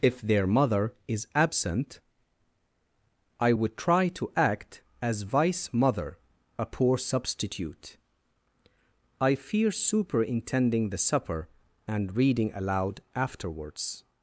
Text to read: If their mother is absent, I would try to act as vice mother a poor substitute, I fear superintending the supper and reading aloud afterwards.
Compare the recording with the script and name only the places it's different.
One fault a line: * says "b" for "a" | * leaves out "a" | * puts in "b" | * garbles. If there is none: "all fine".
all fine